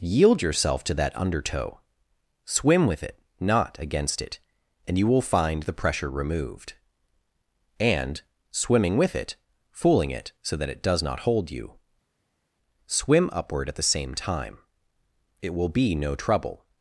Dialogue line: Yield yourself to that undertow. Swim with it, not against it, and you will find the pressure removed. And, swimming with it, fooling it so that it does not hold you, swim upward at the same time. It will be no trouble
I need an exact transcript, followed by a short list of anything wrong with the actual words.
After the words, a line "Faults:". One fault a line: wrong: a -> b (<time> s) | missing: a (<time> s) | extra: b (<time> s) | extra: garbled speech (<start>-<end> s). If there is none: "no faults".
Yield yourself to that undertow. Swim with it, not against it, and you will find the pressure removed. And, swimming with it, fooling it so that it does not hold you, swim upward at the same time. It will be no trouble
Faults:
no faults